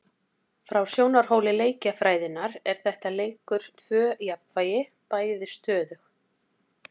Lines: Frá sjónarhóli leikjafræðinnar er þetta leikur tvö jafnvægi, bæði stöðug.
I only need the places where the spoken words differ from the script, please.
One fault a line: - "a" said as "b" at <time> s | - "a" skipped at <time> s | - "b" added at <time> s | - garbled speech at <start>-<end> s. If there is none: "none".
none